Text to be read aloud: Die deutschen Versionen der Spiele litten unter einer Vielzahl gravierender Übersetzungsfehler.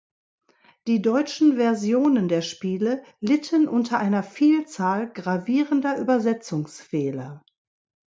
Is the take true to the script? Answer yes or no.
yes